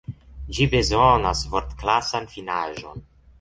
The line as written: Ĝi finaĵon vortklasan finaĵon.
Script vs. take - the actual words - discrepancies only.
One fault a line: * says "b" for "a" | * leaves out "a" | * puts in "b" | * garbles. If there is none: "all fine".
* says "bezonas" for "finaĵon"